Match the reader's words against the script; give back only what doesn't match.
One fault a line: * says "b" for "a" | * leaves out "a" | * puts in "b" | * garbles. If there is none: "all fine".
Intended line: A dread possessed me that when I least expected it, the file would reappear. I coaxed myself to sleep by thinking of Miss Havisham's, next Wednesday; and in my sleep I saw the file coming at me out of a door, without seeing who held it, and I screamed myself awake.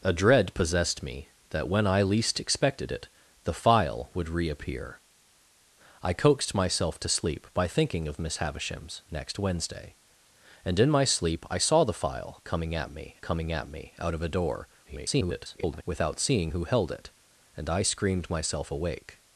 * puts in "coming at me"
* garbles